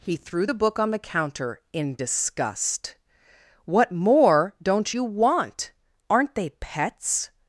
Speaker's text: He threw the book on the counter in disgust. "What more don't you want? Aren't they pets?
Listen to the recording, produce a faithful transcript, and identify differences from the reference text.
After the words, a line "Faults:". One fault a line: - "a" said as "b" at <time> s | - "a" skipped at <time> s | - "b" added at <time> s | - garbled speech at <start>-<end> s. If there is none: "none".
He threw the book on the counter in disgust. "What more don't you want? Aren't they pets?
Faults:
none